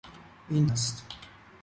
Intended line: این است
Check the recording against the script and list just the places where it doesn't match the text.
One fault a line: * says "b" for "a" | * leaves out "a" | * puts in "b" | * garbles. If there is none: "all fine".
all fine